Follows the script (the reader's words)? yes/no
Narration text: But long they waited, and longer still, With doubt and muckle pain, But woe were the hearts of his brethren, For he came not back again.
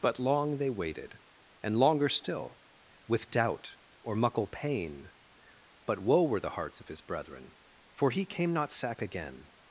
no